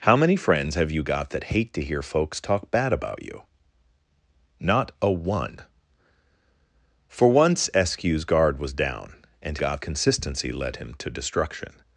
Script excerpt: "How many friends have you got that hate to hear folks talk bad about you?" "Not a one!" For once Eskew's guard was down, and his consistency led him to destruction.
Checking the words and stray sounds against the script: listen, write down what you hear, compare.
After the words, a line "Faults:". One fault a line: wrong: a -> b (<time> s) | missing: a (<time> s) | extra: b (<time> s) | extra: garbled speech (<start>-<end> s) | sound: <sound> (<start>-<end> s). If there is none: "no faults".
"How many friends have you got that hate to hear folks talk bad about you?" "Not a one!" For once Eskew's guard was down, and got consistency led him to destruction.
Faults:
wrong: his -> got (9.6 s)